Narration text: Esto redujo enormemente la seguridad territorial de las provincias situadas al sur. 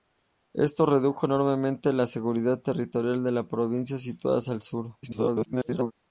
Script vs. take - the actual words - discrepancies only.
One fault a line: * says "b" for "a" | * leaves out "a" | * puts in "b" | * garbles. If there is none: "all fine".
* garbles